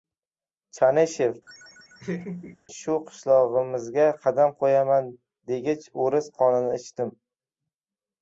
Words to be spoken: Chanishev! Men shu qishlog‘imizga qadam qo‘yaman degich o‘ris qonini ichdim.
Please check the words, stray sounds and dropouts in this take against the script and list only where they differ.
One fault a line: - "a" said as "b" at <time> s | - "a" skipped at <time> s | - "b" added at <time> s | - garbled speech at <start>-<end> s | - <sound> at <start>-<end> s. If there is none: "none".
- "Men" skipped at 1.4 s
- laugh at 1.5-2.6 s